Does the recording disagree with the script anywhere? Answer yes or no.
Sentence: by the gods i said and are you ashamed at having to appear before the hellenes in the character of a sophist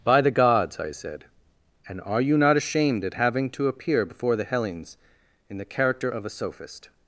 yes